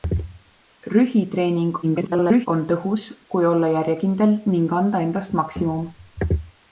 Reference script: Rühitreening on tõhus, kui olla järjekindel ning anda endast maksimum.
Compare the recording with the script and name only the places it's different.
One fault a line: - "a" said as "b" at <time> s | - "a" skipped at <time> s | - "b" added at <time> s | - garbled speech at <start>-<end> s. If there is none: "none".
- garbled speech at 1.8-2.5 s